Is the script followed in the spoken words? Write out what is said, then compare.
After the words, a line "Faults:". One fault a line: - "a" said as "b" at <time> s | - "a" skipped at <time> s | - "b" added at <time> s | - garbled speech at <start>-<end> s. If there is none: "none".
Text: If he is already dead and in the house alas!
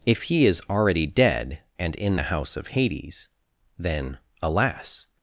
If he is already dead and in the house of Hades, then, alas!
Faults:
- "of Hades then" added at 2.5 s